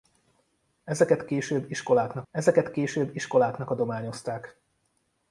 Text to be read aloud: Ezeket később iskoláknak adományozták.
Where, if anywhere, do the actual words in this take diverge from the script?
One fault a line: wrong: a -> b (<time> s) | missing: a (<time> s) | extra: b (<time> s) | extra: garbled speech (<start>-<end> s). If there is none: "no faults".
extra: ezeket később iskoláknak (2.3 s)